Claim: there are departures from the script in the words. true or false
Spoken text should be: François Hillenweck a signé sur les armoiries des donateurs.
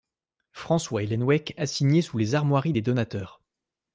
true